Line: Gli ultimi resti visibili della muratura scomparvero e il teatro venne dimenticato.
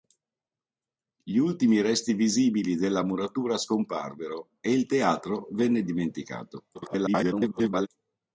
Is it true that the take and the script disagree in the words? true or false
true